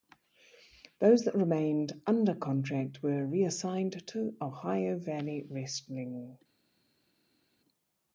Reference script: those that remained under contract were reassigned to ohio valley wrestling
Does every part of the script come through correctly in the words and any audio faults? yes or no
yes